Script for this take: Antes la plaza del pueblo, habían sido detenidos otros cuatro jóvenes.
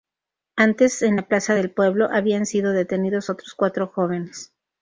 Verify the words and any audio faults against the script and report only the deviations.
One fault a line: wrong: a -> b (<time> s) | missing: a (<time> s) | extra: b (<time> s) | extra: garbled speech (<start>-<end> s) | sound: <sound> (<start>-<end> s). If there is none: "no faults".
extra: en (1.0 s)